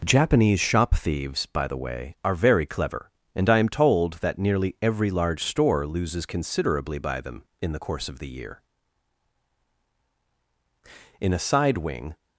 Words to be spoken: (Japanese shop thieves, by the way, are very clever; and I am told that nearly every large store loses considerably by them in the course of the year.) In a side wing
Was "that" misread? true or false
false